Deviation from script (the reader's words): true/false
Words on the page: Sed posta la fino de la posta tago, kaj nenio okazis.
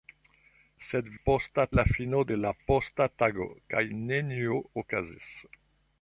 false